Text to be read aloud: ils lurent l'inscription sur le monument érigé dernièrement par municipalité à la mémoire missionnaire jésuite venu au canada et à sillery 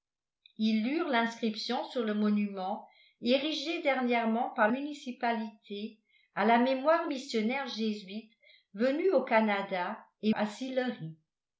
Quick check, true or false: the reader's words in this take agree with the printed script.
true